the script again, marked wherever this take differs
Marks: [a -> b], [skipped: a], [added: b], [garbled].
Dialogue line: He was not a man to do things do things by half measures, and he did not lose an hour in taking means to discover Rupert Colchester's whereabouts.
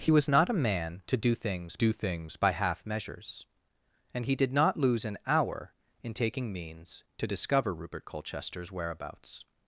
He was not a man to do things do things by half measures, and he did not lose an hour in taking means to discover Rupert Colchester's whereabouts.